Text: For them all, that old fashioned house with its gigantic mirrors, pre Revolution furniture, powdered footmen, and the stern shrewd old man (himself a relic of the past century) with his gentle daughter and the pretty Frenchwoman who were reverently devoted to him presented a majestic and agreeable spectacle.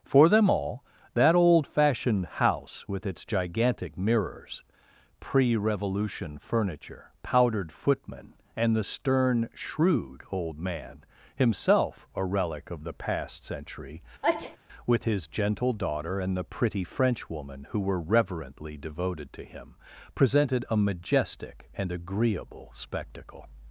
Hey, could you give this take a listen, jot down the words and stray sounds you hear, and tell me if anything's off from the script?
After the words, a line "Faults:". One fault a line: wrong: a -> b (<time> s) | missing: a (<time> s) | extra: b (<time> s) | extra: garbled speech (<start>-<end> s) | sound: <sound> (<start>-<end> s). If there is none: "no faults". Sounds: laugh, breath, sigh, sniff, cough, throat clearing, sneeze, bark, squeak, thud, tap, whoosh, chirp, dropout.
For them all, that old fashioned house with its gigantic mirrors, pre Revolution furniture, powdered footmen, and the stern shrewd old man (himself a relic of the past century) with his gentle daughter and the pretty Frenchwoman who were reverently devoted to him presented a majestic and agreeable spectacle.
Faults:
sound: sneeze (14.2-14.6 s)